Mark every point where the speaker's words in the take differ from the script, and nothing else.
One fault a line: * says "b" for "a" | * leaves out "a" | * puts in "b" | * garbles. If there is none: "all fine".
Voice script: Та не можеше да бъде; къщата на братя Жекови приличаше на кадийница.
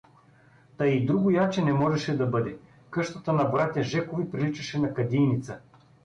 * puts in "и другояче"